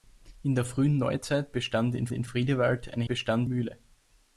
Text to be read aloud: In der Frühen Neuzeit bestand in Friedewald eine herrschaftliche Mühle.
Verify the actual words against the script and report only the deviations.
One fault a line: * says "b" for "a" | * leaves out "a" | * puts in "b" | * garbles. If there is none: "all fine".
* puts in "in"
* says "bestand" for "herrschaftliche"